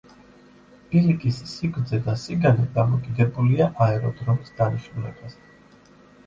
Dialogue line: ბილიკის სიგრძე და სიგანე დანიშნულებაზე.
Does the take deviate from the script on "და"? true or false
false